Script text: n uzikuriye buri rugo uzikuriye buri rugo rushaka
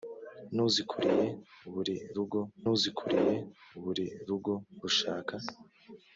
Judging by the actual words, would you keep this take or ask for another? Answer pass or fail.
pass